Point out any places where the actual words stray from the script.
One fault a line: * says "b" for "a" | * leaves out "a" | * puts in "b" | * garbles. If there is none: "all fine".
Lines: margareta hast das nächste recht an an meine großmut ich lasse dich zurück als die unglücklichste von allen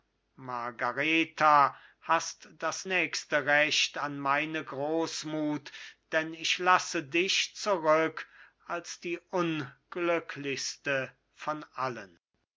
* leaves out "an"
* puts in "denn"